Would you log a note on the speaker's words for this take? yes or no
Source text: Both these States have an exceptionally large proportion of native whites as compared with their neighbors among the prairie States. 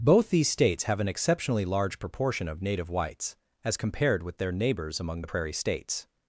no